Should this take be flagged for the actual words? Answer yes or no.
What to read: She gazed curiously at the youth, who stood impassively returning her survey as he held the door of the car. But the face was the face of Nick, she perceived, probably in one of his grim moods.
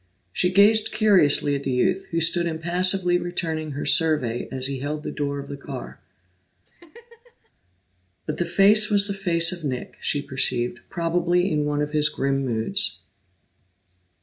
no